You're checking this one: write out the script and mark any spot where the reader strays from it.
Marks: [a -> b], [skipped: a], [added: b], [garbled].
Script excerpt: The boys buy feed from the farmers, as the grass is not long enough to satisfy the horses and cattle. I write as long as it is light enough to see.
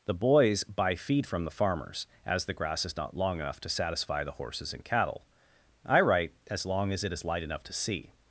The boys buy feed from the farmers, as the grass is not long enough to satisfy the horses and cattle. I write as long as it is light enough to see.